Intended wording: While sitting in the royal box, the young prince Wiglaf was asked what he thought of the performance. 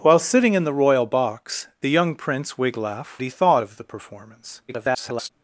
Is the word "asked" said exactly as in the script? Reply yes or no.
no